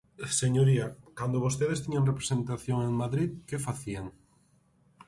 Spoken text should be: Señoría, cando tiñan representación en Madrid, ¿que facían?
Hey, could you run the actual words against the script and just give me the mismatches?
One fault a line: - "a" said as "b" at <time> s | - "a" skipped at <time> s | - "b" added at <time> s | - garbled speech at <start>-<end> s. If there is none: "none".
- "vostedes" added at 1.4 s